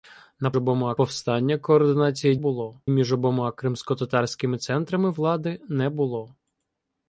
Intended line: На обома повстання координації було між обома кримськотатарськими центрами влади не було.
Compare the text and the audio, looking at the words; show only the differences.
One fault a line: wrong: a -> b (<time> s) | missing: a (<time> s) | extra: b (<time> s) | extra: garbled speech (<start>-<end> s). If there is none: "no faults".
no faults